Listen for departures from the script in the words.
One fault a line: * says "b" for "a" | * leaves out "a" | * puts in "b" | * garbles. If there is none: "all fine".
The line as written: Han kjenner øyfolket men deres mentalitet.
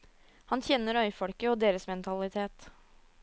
* says "og" for "men"